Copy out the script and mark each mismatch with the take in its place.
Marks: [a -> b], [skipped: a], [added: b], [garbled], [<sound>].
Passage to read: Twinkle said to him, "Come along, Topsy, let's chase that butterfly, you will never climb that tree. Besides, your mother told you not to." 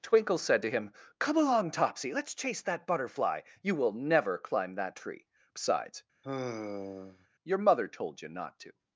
Twinkle said to him, "Come along, Topsy, let's chase that butterfly, you will never climb that tree. Besides, [sigh] your mother told you not to."